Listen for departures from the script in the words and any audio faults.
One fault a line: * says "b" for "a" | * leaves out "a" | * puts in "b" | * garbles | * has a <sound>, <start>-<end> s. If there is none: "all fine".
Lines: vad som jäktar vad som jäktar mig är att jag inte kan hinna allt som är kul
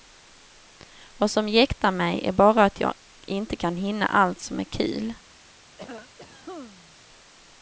* leaves out "vad som jäktar"
* puts in "bara"
* has a cough, 5.8-7.0 s